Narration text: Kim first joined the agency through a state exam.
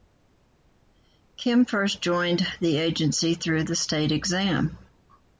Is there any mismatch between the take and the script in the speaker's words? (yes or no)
yes